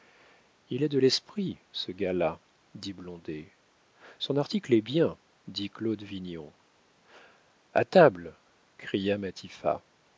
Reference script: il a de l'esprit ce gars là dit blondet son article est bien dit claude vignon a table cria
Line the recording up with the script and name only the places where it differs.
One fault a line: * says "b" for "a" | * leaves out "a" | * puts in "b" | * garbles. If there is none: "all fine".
all fine